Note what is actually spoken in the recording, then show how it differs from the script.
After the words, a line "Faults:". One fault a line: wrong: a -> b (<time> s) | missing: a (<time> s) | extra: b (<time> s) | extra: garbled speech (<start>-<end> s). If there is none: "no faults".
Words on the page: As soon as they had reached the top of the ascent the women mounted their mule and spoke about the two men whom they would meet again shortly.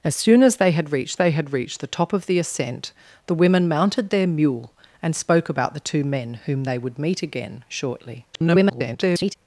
As soon as they had reached they had reached the top of the ascent the women mounted their mule and spoke about the two men whom they would meet again shortly. [garbled]
Faults:
extra: they had reached (1.1 s)
extra: garbled speech (8.3-9.4 s)